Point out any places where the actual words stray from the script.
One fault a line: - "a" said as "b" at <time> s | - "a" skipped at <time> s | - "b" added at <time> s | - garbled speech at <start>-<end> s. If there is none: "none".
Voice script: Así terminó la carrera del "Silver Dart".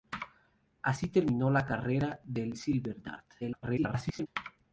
- garbled speech at 3.4-4.3 s